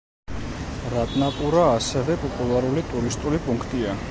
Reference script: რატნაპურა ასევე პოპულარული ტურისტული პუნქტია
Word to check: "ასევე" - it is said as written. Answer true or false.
true